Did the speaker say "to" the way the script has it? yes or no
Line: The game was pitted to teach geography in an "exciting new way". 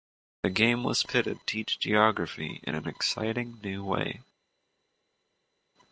no